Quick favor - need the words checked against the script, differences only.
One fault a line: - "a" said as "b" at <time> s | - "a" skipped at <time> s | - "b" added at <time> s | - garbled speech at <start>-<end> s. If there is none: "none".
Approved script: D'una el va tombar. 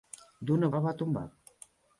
none